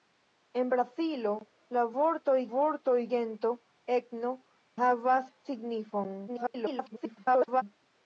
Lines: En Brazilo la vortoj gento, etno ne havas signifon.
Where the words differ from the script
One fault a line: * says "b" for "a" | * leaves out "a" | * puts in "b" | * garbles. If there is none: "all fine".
* puts in "vortoj"
* leaves out "ne"
* garbles